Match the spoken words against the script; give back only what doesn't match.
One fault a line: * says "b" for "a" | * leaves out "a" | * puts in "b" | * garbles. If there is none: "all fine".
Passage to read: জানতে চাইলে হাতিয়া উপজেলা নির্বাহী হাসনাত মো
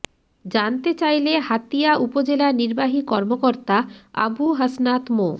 * puts in "কর্মকর্তা আবু"